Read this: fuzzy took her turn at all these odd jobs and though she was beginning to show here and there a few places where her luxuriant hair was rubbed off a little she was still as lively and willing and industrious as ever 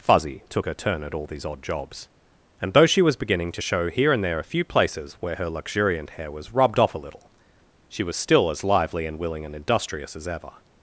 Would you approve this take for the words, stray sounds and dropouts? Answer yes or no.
yes